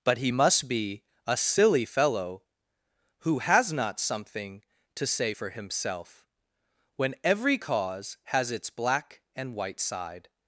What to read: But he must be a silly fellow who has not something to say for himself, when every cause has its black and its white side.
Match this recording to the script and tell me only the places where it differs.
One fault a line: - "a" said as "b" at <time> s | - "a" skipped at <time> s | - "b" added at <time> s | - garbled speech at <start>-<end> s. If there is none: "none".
- "its" skipped at 9.5 s